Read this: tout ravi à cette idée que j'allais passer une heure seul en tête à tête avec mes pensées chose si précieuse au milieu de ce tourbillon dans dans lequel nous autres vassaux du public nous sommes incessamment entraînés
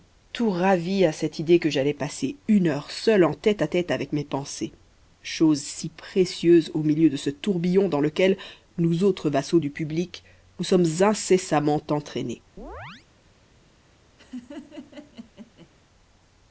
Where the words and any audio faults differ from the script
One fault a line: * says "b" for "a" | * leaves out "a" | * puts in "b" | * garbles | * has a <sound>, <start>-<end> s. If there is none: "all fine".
* leaves out "dans"
* has a chirp, 12.6-13.1 s
* has a laugh, 14.2-15.7 s